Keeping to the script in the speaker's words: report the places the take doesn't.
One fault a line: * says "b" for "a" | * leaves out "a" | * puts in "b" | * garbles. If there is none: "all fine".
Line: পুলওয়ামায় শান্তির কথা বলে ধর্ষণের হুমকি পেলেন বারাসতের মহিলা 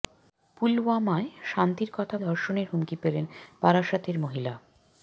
* leaves out "বলে"